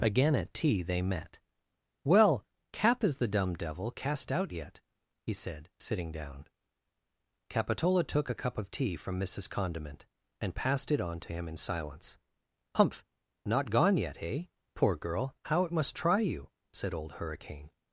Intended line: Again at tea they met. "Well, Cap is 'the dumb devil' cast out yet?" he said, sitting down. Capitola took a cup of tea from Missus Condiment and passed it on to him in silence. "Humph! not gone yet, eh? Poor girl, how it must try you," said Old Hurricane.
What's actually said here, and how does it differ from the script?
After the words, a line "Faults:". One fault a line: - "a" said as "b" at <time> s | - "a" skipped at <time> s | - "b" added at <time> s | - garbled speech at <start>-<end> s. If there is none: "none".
Again at tea they met. "Well, Cap is 'the dumb devil' cast out yet?" he said, sitting down. Capitola took a cup of tea from Missus Condiment and passed it on to him in silence. "Humph! not gone yet, eh? Poor girl, how it must try you," said Old Hurricane.
Faults:
none